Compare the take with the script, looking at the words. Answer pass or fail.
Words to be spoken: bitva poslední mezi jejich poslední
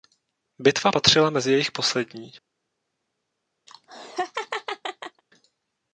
fail